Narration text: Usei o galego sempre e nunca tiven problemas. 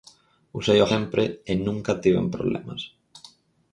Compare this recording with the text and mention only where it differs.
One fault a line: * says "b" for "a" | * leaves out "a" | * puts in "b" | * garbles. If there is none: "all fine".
* leaves out "galego"